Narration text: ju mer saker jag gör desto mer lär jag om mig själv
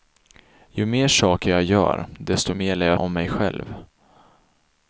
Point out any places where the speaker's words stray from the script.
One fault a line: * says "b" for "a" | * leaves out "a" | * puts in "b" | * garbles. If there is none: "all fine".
all fine